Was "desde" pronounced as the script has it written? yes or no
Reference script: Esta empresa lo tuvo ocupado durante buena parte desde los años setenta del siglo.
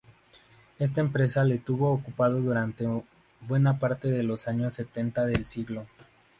no